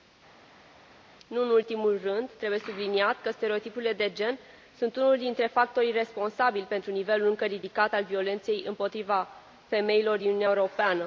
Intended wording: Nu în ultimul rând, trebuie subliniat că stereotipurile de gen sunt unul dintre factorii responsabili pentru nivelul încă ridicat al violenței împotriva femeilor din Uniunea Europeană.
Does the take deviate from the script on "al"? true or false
false